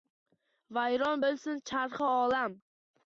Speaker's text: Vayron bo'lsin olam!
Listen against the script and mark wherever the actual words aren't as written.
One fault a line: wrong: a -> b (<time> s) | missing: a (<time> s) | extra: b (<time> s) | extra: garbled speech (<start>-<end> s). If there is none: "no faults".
extra: charxi (1.7 s)